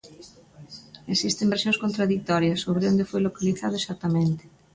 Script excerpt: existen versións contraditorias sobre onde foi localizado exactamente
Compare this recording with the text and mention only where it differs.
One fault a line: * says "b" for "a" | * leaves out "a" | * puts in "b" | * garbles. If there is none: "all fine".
all fine